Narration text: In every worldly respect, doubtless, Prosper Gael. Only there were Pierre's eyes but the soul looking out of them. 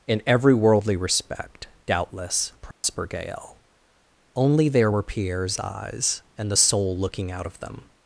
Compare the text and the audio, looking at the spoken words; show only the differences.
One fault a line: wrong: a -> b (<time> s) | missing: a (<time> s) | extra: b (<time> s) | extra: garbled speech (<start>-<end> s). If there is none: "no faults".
wrong: but -> and (6.4 s)